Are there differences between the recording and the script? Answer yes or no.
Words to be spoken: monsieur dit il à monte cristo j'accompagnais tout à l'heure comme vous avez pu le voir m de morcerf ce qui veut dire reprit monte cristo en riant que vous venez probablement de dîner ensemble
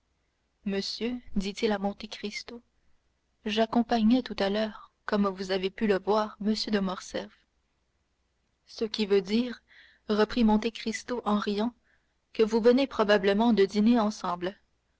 no